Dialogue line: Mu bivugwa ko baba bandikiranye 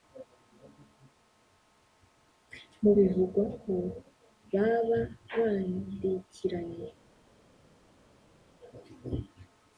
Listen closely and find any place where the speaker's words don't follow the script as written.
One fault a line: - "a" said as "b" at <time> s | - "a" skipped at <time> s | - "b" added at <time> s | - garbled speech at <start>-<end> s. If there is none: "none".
none